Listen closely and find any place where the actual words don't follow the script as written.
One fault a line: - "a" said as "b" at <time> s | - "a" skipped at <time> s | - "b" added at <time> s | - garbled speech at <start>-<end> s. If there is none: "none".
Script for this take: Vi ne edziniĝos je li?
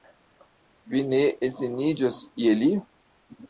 none